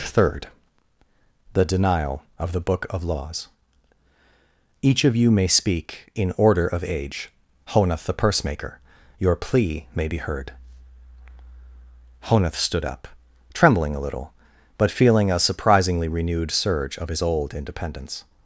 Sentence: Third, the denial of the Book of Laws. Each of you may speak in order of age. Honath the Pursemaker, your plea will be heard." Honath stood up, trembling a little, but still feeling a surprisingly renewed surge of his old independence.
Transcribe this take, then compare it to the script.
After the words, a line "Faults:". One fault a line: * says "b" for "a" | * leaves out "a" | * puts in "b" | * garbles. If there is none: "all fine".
Third, the denial of the Book of Laws. Each of you may speak in order of age. Honath the Pursemaker, your plea may be heard." Honath stood up, trembling a little, but feeling a surprisingly renewed surge of his old independence.
Faults:
* says "may" for "will"
* leaves out "still"